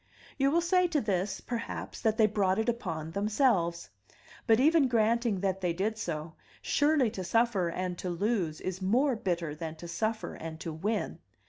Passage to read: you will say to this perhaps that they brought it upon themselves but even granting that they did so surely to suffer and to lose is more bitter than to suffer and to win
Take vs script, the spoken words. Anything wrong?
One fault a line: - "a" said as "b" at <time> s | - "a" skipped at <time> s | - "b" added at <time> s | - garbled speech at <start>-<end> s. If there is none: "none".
none